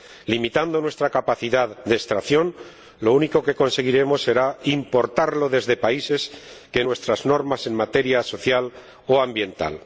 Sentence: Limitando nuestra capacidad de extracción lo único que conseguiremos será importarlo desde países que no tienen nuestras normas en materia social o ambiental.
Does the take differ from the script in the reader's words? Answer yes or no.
yes